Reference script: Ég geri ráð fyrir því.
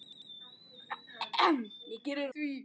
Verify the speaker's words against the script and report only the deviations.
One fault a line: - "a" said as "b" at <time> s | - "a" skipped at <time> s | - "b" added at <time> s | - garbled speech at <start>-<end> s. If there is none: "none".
- "ráð fyrir" skipped at 2.3 s